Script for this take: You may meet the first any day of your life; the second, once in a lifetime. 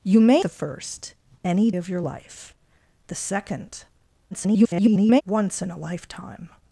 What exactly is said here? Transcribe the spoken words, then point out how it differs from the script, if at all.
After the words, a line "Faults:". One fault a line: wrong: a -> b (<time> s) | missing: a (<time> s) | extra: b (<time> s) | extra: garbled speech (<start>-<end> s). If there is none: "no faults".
You may the first any of your life; the second, [garbled] once in a lifetime.
Faults:
missing: meet (0.5 s)
missing: day (1.7 s)
extra: garbled speech (4.3-5.2 s)